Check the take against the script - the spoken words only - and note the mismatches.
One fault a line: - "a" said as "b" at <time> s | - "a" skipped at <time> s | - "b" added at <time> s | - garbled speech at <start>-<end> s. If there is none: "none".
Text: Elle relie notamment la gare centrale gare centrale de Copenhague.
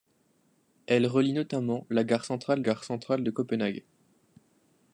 none